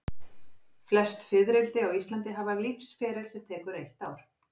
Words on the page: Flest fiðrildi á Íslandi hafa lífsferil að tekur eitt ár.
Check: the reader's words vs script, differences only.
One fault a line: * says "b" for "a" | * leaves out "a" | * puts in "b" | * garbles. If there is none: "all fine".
* says "sem" for "að"